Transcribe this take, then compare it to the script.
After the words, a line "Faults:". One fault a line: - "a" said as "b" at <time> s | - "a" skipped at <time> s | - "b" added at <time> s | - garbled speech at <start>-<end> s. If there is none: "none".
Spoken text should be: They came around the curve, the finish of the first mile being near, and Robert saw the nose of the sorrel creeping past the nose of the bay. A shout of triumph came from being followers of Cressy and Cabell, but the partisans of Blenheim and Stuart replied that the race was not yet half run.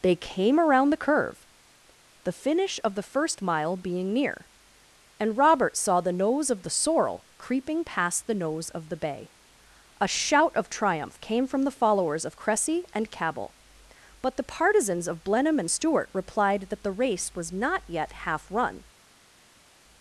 They came around the curve, the finish of the first mile being near, and Robert saw the nose of the sorrel creeping past the nose of the bay. A shout of triumph came from the followers of Cressy and Cabell, but the partisans of Blenheim and Stuart replied that the race was not yet half run.
Faults:
- "being" said as "the" at 11.6 s